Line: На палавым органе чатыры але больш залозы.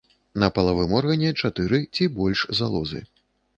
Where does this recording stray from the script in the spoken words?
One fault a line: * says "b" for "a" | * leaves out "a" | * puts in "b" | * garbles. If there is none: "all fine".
* says "ці" for "але"